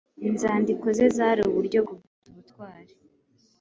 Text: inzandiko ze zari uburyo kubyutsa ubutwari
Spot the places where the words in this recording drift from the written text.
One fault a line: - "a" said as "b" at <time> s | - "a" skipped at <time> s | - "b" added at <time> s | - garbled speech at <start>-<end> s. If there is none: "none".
none